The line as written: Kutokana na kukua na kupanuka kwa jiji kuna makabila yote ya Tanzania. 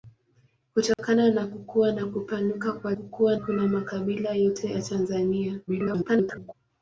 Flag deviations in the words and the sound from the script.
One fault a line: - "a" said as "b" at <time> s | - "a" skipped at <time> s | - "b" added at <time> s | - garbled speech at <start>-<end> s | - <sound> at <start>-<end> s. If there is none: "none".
- dropout at 0.9-1.0 s
- "jiji" said as "kukua" at 2.9 s
- garbled speech at 5.7-6.5 s